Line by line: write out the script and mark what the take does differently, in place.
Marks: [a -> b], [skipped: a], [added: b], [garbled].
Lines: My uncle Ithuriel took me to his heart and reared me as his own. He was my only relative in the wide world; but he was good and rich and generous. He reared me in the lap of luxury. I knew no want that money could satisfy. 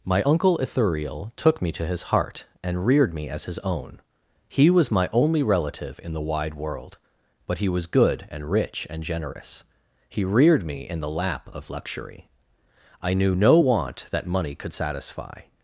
My uncle Ithuriel took me to his heart and reared me as his own. He was my only relative in the wide world; but he was good and rich and generous. He reared me in the lap of luxury. I knew no want that money could satisfy.